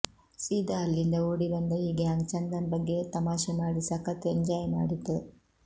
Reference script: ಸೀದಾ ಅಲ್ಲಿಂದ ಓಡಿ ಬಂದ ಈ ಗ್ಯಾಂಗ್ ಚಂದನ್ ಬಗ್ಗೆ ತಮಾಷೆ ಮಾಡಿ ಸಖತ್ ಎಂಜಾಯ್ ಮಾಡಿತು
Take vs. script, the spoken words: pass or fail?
pass